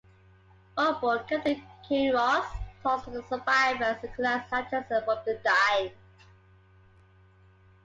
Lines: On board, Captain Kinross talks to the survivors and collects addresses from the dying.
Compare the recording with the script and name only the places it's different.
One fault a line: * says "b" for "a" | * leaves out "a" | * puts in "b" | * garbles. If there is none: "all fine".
all fine